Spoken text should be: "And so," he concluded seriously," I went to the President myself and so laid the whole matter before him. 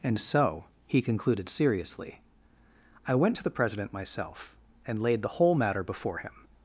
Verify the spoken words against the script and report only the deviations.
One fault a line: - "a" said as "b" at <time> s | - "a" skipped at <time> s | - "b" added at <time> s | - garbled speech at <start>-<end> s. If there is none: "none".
- "so" skipped at 5.0 s